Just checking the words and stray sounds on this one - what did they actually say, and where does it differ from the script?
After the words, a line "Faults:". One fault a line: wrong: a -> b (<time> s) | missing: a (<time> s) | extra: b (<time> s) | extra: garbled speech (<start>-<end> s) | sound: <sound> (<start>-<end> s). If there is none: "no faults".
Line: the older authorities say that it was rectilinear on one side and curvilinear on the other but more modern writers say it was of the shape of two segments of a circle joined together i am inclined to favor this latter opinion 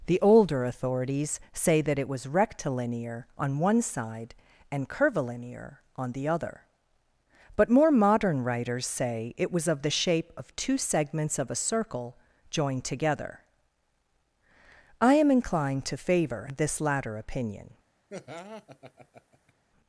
the older authorities say that it was rectilinear on one side and curvilinear on the other but more modern writers say it was of the shape of two segments of a circle joined together i am inclined to favor this latter opinion
Faults:
sound: laugh (18.1-19.5 s)